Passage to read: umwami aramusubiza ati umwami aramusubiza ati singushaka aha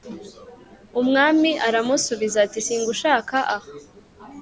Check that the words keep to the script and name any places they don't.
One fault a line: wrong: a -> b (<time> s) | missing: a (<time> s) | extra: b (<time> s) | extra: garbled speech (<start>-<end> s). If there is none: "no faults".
missing: umwami aramusubiza ati (2.6 s)